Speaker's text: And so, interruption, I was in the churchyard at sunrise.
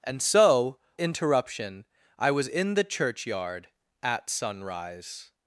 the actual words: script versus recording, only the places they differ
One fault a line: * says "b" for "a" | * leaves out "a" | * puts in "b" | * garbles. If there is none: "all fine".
all fine